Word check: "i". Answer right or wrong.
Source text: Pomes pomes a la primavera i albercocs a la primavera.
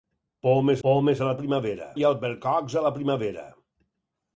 right